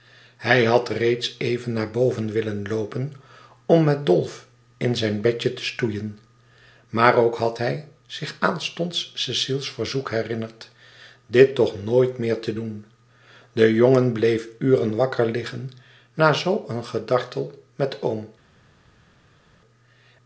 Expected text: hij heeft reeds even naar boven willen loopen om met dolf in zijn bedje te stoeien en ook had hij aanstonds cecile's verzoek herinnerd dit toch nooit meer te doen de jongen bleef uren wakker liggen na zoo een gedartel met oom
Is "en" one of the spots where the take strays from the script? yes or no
yes